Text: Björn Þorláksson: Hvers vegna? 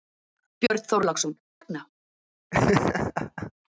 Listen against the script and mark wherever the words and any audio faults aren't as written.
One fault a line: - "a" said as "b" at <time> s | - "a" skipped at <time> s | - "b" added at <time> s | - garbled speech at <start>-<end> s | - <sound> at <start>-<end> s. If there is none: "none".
- dropout at 0.7-0.7 s
- "Hvers" skipped at 1.4 s
- laugh at 2.5-3.5 s